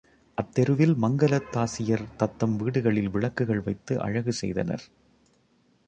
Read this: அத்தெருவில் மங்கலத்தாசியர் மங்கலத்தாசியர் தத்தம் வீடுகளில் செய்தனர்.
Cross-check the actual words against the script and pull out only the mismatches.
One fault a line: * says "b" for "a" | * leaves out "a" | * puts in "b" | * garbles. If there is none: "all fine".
* leaves out "மங்கலத்தாசியர்"
* puts in "விளக்குகள் வைத்து அழகு"